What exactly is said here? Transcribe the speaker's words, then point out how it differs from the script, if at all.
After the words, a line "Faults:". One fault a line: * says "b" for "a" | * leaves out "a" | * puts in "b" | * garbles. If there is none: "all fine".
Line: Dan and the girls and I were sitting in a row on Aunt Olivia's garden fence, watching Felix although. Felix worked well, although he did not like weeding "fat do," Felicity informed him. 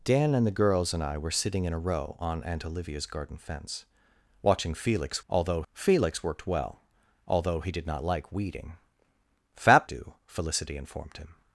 Dan and the girls and I were sitting in a row on Aunt Olivia's garden fence, watching Felix although. Felix worked well, although he did not like weeding "fat do," Felicity informed him.
Faults:
all fine